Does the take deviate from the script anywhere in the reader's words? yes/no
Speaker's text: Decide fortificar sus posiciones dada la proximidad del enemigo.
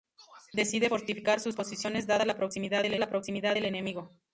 yes